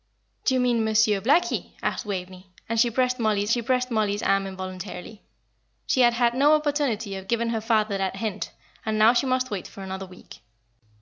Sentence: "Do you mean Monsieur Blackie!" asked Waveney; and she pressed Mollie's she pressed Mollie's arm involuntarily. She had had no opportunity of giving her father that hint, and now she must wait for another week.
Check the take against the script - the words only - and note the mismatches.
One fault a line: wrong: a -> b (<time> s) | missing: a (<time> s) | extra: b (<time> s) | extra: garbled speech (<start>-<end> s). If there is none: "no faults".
no faults